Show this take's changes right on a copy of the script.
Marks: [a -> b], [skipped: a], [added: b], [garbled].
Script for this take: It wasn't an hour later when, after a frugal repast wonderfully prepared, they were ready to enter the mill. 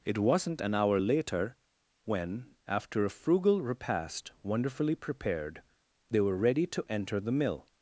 It wasn't an hour later when, after a frugal repast wonderfully prepared, they were ready to enter the mill.